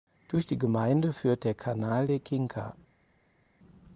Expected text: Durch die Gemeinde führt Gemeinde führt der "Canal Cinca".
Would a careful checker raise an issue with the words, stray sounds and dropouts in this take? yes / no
yes